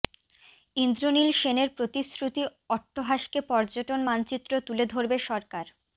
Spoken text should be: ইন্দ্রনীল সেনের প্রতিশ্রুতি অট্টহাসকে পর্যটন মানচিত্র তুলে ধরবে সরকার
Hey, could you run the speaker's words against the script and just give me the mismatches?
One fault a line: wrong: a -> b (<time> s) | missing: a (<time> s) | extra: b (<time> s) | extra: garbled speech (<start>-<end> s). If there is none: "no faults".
no faults